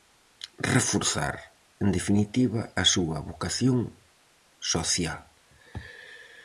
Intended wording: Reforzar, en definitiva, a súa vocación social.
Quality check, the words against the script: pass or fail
pass